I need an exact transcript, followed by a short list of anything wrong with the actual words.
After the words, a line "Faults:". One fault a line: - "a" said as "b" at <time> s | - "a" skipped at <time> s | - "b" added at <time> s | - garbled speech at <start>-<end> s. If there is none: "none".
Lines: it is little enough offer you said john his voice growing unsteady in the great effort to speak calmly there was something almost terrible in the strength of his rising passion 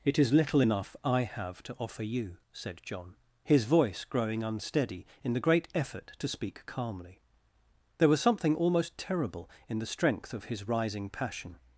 it is little enough i have to offer you said john his voice growing unsteady in the great effort to speak calmly there was something almost terrible in the strength of his rising passion
Faults:
- "i have to" added at 1.0 s